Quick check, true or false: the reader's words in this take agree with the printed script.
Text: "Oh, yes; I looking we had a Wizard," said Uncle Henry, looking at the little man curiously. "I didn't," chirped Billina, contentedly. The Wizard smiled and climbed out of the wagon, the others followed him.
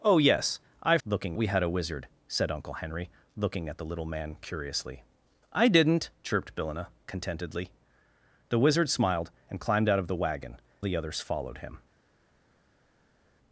true